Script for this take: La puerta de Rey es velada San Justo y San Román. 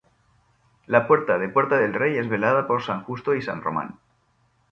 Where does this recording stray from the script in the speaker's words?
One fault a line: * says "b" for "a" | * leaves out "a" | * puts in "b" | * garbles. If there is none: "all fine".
* puts in "Puerta del"
* puts in "por"